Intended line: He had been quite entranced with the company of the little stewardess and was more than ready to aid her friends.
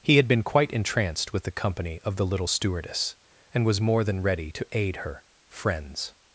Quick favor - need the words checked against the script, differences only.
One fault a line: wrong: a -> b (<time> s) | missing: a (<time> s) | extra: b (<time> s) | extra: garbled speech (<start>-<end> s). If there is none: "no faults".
no faults